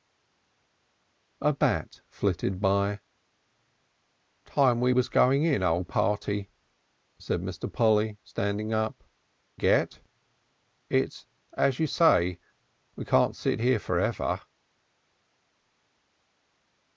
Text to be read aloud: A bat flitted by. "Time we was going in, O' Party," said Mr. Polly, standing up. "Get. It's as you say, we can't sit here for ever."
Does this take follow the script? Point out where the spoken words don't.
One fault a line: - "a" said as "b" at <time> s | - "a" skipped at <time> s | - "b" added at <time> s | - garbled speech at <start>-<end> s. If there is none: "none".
none